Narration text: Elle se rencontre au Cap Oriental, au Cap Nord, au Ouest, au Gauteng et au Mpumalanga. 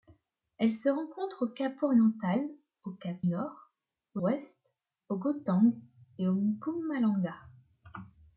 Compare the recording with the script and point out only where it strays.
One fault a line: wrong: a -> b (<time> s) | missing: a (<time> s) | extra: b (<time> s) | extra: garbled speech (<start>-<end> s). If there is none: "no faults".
no faults